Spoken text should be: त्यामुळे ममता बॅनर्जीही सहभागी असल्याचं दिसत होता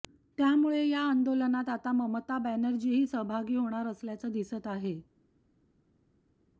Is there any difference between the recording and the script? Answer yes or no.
yes